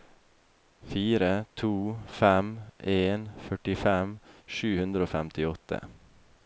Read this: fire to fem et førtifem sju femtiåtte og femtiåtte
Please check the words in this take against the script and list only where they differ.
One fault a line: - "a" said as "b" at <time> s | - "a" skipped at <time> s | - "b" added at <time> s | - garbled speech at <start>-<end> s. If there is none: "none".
- "et" said as "en" at 3.0 s
- "femtiåtte" said as "hundre" at 4.8 s